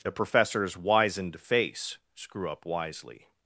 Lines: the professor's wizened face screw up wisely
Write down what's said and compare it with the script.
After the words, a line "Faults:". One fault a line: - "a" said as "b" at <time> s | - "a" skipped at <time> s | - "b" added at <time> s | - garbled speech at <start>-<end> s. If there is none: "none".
the professor's wizened face screw up wisely
Faults:
none